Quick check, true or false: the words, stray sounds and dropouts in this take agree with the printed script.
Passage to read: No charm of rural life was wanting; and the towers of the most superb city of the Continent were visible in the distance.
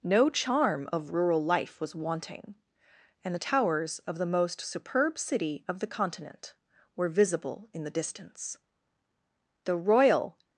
false